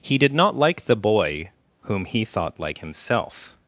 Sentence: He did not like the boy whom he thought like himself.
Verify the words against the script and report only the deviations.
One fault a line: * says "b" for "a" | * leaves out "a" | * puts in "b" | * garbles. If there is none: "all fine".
all fine